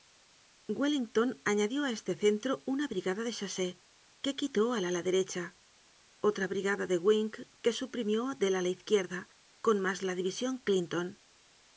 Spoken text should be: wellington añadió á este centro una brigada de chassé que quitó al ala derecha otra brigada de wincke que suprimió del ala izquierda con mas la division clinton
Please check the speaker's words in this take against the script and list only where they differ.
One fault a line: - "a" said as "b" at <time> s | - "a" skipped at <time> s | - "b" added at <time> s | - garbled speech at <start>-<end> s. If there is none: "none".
none